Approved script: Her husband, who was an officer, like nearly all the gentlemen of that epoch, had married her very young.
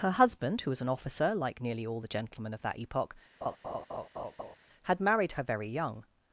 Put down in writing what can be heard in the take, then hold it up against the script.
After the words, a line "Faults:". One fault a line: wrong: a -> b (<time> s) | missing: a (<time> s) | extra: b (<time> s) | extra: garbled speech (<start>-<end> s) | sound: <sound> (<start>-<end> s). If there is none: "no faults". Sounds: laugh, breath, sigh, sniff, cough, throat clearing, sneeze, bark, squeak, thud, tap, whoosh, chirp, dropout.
Her husband, who was an officer, like nearly all the gentlemen of that epoch, had married her very young.
Faults:
sound: laugh (3.4-4.6 s)